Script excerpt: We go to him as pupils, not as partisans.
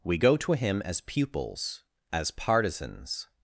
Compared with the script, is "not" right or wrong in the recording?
wrong